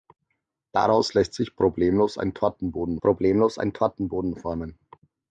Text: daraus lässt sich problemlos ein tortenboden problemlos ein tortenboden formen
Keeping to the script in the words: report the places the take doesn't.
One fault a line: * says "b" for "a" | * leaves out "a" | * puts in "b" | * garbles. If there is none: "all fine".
all fine